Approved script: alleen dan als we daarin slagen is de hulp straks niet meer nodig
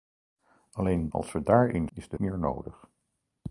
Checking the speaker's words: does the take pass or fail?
fail